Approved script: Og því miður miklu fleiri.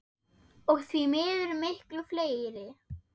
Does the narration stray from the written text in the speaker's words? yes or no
no